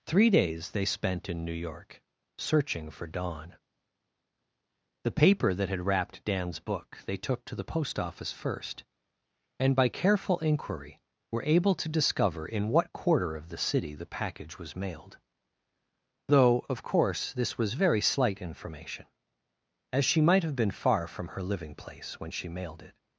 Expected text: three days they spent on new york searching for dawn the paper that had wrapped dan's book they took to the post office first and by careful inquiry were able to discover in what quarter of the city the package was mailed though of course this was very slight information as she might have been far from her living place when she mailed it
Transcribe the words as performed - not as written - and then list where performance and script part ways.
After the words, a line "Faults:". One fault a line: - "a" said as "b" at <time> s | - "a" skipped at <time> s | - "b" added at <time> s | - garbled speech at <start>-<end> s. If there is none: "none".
three days they spent in new york searching for dawn the paper that had wrapped dan's book they took to the post office first and by careful inquiry were able to discover in what quarter of the city the package was mailed though of course this was very slight information as she might have been far from her living place when she mailed it
Faults:
- "on" said as "in" at 1.3 s